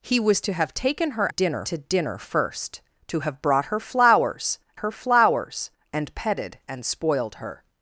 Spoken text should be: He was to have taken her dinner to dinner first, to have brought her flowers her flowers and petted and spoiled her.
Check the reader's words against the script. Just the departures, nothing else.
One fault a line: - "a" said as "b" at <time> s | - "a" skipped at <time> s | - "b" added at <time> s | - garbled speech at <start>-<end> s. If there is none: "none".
none